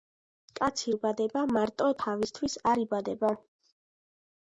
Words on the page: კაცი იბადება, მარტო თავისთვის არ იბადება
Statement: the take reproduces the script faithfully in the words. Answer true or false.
true